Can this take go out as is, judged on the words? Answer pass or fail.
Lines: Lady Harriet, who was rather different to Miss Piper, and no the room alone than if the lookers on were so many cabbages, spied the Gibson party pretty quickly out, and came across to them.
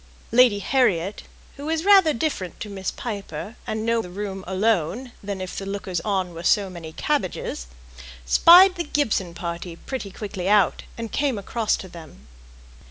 pass